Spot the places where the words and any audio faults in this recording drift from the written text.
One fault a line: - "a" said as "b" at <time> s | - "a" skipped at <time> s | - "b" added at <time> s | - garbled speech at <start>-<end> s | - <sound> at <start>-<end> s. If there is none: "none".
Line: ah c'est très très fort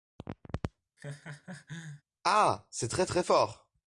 - laugh at 1.0-2.0 s